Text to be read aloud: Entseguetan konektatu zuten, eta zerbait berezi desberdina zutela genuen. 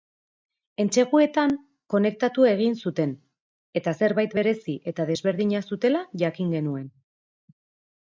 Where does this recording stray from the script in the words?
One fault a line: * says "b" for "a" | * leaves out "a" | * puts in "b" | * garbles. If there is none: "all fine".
* puts in "egin"
* puts in "eta"
* puts in "jakin"